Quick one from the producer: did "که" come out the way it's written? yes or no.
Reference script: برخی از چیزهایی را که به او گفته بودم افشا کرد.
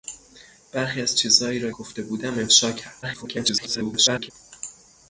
no